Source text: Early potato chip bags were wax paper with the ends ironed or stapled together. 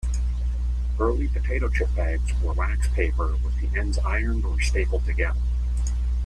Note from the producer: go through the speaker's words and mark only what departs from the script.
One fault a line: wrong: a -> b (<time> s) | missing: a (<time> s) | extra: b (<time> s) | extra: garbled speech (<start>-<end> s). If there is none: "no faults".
no faults